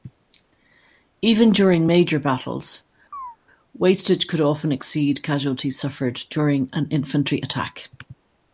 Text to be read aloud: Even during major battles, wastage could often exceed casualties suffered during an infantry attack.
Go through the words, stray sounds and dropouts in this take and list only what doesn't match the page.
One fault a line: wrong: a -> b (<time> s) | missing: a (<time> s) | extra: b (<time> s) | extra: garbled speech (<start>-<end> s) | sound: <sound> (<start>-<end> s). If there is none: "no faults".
sound: chirp (3.1-3.4 s)